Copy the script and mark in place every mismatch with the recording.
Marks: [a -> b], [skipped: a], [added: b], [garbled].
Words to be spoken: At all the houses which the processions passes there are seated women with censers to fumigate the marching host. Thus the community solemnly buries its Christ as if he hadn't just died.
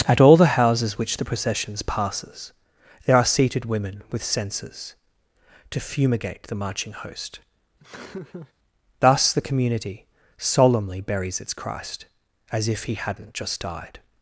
At all the houses which the processions passes there are seated women with censers to fumigate the marching host. Thus the community solemnly buries its Christ as if he hadn't just died.